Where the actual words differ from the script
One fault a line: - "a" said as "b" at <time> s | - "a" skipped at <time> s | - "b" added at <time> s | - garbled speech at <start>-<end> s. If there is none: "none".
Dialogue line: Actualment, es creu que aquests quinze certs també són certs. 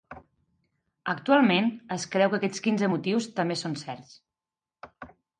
- "certs" said as "motius" at 2.9 s